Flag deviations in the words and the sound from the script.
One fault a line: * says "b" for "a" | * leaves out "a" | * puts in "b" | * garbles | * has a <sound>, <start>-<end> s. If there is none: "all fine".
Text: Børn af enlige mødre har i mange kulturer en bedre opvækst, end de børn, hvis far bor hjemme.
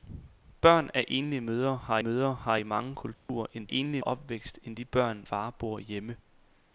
* puts in "mødre har"
* has a dropout, 3.1-3.3 s
* says "enlige" for "bedre"
* leaves out "hvis"